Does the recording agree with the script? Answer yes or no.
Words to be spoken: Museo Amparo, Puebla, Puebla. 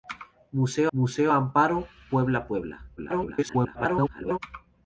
no